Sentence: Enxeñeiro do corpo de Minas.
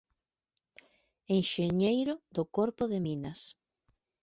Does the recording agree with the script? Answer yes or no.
yes